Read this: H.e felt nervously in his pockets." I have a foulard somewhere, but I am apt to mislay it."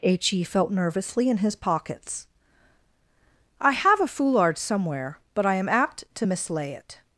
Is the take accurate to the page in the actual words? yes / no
yes